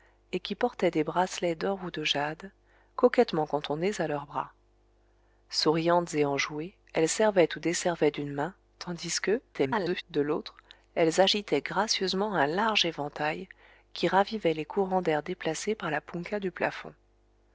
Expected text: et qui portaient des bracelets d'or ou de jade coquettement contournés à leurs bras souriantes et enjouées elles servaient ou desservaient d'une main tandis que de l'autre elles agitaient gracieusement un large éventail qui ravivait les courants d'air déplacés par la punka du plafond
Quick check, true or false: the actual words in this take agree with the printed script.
false